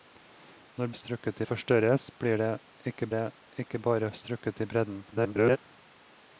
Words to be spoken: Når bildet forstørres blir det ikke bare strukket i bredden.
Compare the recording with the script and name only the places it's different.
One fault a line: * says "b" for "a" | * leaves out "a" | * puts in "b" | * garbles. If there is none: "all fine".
* says "strukket" for "bildet"
* puts in "det ikke"
* garbles